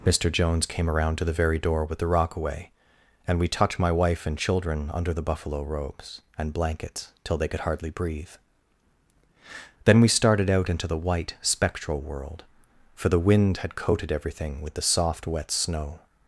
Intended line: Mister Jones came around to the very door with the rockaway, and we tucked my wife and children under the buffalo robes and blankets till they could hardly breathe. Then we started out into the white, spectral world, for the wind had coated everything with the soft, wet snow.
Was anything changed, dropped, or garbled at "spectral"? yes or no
no